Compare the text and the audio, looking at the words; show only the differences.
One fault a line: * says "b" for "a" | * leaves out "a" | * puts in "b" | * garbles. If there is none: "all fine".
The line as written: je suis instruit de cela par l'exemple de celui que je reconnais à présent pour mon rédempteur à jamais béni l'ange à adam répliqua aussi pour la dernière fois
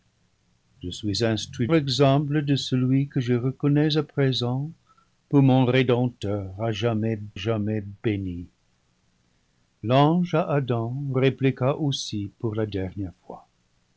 * leaves out "de cela par"
* puts in "jamais"